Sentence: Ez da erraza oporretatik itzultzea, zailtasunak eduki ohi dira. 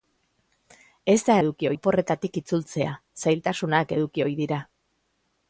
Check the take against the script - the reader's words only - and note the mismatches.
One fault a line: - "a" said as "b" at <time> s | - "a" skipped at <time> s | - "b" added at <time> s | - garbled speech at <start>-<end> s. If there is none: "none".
- "erraza" said as "eduki" at 1.4 s